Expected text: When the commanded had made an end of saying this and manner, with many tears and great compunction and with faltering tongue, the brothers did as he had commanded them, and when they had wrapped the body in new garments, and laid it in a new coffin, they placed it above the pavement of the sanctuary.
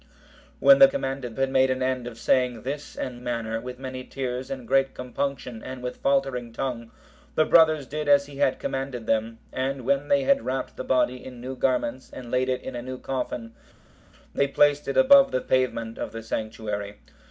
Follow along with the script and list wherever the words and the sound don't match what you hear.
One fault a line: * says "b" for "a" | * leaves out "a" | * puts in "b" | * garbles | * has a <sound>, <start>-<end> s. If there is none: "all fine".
all fine